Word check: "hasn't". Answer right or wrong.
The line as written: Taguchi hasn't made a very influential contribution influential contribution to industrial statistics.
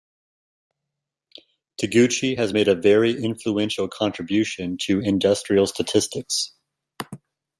wrong